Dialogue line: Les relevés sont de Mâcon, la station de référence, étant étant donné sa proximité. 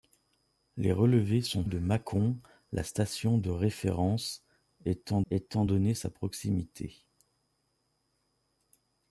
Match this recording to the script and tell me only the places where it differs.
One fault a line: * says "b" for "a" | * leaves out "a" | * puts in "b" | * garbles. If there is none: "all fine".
all fine